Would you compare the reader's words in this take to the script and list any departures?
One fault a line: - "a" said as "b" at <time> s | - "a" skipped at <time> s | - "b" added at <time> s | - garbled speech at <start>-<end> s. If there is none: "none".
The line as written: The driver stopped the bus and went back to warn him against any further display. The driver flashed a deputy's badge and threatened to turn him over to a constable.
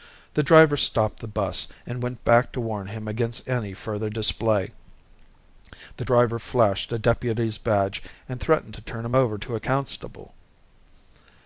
none